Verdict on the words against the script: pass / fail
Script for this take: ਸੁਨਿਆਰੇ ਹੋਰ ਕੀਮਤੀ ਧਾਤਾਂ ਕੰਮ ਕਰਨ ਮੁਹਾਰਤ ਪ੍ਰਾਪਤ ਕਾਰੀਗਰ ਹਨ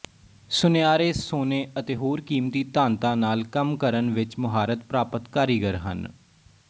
fail